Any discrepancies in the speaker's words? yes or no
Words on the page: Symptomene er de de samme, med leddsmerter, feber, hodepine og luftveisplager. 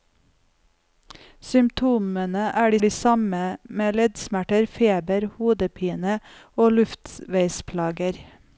no